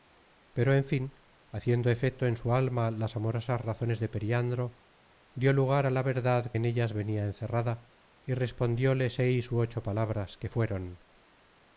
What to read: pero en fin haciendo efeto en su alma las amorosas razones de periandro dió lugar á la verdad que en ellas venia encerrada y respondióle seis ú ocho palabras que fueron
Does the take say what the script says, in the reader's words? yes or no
no